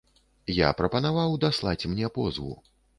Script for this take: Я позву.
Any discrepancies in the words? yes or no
yes